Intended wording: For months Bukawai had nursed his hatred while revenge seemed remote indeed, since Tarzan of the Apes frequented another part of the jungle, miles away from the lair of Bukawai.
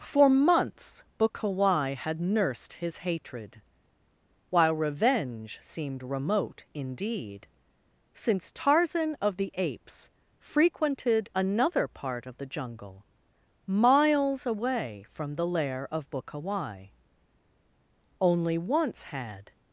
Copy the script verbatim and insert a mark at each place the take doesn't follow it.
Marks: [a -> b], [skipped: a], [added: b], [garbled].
For months Bukawai had nursed his hatred while revenge seemed remote indeed, since Tarzan of the Apes frequented another part of the jungle, miles away from the lair of Bukawai. [added: Only once had]